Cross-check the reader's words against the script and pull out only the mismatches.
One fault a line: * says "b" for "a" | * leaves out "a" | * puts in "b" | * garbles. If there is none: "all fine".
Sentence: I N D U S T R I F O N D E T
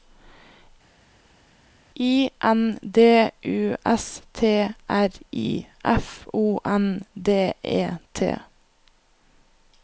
all fine